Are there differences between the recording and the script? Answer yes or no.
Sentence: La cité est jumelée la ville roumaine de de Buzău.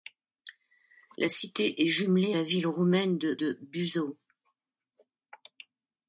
no